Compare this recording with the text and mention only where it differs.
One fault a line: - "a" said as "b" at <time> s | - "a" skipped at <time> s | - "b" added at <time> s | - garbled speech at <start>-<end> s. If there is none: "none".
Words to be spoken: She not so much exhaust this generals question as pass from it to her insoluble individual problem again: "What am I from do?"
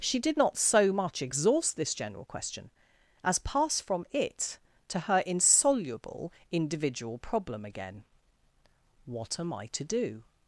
- "did" added at 0.2 s
- "generals" said as "general" at 1.9 s
- "from" said as "to" at 9.7 s